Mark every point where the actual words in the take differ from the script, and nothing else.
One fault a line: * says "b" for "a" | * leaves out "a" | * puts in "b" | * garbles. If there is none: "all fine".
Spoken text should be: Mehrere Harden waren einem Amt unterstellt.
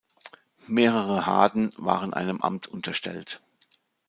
all fine